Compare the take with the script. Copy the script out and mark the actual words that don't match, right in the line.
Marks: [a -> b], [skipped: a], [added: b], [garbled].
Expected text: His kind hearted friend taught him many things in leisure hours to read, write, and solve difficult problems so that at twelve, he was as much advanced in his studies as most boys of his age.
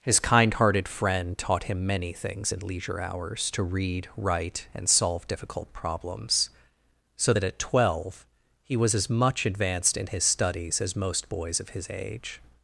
His kind hearted friend taught him many things in leisure hours to read, write, and solve difficult problems so that at twelve, he was as much advanced in his studies as most boys of his age.